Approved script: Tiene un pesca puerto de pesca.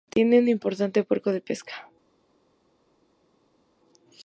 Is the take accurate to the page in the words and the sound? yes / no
no